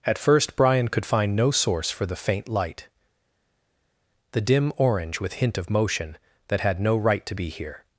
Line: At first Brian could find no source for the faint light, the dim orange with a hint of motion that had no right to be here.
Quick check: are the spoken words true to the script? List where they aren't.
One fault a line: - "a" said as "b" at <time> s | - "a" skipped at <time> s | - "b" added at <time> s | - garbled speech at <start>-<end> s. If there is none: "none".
- "a" skipped at 5.3 s